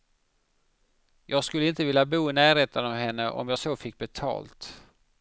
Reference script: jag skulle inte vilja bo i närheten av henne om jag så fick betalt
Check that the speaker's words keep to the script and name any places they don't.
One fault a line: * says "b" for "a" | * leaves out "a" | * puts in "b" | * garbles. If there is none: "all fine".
all fine